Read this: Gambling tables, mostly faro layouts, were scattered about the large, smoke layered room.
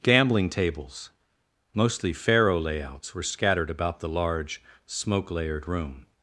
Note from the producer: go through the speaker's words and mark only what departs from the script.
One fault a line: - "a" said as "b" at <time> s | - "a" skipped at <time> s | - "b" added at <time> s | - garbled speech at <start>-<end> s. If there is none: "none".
none